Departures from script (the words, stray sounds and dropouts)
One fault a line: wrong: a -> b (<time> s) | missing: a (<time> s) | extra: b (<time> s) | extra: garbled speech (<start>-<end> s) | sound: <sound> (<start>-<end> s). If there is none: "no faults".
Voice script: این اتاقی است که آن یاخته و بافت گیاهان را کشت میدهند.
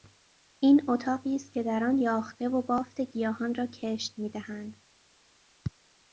extra: در (1.6 s)